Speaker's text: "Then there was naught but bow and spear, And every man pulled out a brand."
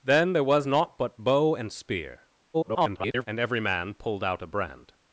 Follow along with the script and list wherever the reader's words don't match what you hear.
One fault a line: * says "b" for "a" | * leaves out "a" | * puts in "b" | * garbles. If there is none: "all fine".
* garbles